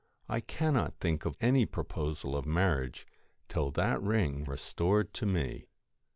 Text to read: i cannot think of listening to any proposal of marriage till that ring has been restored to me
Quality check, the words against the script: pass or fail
fail